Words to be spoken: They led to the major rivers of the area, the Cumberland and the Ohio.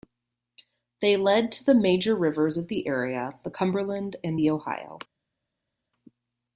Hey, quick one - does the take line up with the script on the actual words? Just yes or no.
yes